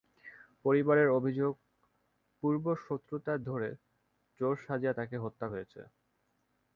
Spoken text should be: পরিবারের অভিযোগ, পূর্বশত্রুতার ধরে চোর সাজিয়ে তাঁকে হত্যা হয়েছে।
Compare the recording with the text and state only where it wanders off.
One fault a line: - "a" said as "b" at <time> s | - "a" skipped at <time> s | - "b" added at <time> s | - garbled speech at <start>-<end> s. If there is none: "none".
none